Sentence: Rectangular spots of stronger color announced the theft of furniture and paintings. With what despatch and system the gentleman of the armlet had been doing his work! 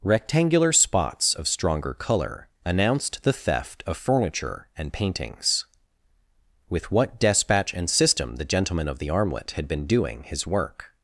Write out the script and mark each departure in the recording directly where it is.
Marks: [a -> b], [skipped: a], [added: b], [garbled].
Rectangular spots of stronger color announced the theft of furniture and paintings. With what despatch and system the gentleman of the armlet had been doing his work!